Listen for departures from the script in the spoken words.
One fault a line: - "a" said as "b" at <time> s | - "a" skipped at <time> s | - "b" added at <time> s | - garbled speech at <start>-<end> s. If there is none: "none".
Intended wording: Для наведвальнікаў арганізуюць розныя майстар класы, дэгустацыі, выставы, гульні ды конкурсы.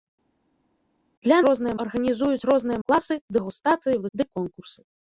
- "наведвальнікаў" said as "розныя" at 1.5 s
- "майстар" skipped at 2.8 s
- "выставы гульні" skipped at 4.0 s